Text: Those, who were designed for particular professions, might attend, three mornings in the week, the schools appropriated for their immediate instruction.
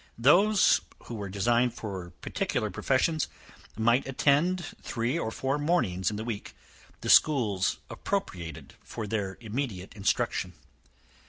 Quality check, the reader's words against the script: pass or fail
fail